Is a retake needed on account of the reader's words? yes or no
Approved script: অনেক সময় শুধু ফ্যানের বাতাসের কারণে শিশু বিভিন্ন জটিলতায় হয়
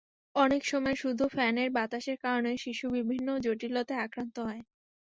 yes